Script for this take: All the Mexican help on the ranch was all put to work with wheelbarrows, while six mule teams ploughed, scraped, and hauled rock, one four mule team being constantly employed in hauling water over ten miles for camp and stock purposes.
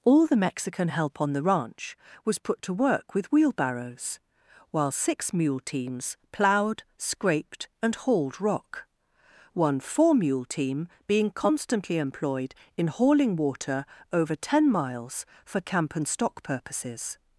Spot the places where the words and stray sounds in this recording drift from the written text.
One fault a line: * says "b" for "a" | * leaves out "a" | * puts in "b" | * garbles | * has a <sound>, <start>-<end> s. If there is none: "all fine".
* leaves out "all"